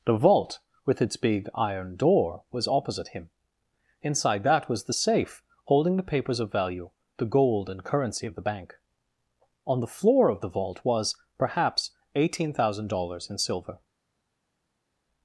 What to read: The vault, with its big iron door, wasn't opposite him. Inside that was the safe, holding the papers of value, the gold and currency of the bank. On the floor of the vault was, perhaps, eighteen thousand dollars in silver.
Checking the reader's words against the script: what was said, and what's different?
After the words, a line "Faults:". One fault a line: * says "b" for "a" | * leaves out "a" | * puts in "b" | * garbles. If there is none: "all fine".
The vault, with its big iron door, was opposite him. Inside that was the safe, holding the papers of value, the gold and currency of the bank. On the floor of the vault was, perhaps, eighteen thousand dollars in silver.
Faults:
* says "was" for "wasn't"